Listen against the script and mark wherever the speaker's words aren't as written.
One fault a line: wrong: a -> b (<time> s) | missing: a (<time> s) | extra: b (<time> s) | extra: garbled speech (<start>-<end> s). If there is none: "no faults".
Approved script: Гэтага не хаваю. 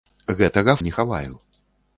no faults